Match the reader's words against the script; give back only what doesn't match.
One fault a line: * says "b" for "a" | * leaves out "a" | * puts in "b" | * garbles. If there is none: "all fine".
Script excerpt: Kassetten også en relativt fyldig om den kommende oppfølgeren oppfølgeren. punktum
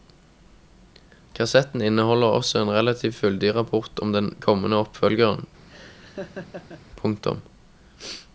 * puts in "inneholder"
* puts in "rapport"
* leaves out "oppfølgeren"